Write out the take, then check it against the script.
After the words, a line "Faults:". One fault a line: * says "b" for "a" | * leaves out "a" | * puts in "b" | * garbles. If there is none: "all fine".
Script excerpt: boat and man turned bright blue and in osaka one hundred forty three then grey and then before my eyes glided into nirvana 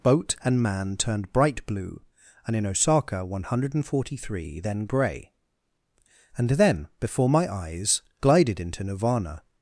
boat and man turned bright blue and in osaka one hundred forty three then grey and then before my eyes glided into nirvana
Faults:
all fine